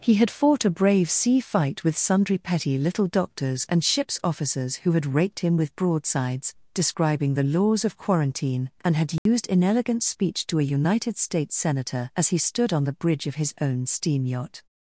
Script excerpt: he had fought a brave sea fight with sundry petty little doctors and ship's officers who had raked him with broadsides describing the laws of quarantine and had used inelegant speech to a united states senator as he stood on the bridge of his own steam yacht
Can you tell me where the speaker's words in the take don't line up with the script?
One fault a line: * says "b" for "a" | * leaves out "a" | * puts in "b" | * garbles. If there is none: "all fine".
all fine